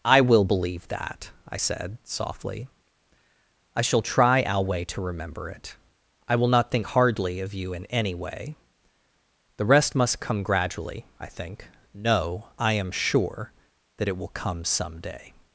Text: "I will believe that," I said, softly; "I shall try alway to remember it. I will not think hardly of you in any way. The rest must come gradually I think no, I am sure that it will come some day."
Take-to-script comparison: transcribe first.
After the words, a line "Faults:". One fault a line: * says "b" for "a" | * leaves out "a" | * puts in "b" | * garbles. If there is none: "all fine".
"I will believe that," I said, softly; "I shall try alway to remember it. I will not think hardly of you in any way. The rest must come gradually I think no, I am sure that it will come some day."
Faults:
all fine